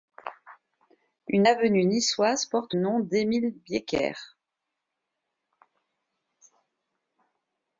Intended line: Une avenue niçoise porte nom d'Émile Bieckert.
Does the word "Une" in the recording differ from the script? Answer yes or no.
no